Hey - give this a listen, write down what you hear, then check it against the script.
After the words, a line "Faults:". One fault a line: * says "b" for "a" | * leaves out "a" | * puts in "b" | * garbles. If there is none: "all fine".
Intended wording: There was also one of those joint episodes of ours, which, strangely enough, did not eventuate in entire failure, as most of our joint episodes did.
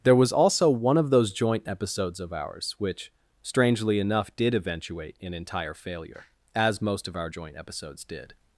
There was also one of those joint episodes of ours, which, strangely enough, did eventuate in entire failure, as most of our joint episodes did.
Faults:
* leaves out "not"